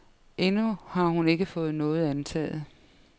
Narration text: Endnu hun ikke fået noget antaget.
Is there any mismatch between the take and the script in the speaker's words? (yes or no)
yes